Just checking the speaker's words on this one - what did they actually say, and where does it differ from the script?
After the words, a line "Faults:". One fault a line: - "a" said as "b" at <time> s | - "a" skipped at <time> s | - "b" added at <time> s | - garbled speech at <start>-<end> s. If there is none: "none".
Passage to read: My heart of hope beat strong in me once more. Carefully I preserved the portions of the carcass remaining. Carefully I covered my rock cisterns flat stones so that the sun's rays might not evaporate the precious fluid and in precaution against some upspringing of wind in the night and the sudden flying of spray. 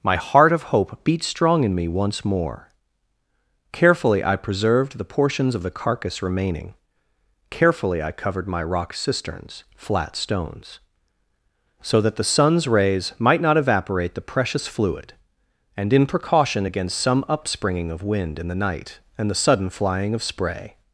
My heart of hope beat strong in me once more. Carefully I preserved the portions of the carcass remaining. Carefully I covered my rock cisterns flat stones so that the sun's rays might not evaporate the precious fluid and in precaution against some upspringing of wind in the night and the sudden flying of spray.
Faults:
none